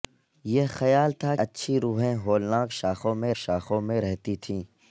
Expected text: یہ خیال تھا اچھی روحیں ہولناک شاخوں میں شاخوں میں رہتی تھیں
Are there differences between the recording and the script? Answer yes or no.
no